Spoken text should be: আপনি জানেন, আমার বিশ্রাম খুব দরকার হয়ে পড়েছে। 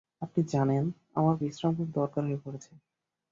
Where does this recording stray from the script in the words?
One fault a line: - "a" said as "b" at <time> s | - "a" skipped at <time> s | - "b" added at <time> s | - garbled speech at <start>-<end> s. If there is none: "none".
none